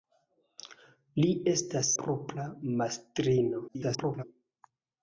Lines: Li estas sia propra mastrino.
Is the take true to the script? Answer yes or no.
no